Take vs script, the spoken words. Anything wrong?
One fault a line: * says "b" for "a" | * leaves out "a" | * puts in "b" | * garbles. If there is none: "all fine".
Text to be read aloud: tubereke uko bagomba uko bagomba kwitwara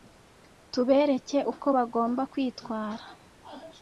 * leaves out "uko bagomba"